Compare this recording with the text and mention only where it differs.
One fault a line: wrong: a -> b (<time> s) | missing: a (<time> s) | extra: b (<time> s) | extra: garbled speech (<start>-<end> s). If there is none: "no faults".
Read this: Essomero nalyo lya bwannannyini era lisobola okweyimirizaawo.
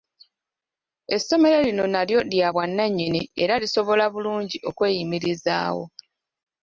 extra: lino (1.7 s)
extra: bulungi (4.1 s)